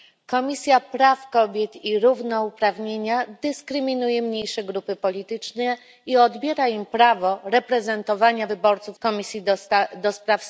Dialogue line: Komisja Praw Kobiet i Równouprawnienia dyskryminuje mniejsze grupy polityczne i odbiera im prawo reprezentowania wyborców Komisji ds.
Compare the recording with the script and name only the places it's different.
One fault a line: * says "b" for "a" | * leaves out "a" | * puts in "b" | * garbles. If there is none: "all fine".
all fine